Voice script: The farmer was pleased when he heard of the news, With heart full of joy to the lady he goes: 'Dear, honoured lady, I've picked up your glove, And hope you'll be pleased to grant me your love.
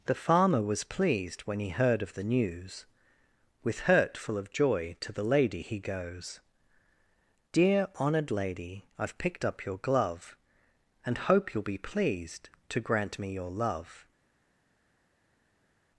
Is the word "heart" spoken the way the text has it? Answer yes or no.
no